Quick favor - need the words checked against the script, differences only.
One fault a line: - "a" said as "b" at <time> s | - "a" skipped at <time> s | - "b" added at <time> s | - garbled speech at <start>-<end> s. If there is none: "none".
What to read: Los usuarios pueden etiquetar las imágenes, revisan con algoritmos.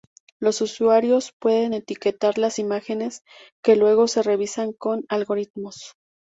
- "que luego se" added at 3.6 s